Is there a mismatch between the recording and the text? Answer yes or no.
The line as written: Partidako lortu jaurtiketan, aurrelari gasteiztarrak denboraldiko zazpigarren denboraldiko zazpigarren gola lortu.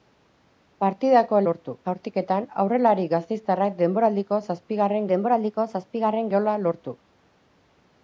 no